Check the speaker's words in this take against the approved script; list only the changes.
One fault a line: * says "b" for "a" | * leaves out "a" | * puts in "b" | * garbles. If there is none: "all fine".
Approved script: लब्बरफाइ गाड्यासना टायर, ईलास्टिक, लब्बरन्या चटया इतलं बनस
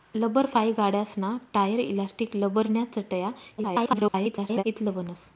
* garbles